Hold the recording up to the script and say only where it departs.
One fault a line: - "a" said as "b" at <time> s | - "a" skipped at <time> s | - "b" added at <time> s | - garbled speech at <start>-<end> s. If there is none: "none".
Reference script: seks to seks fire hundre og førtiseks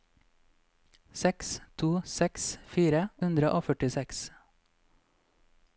none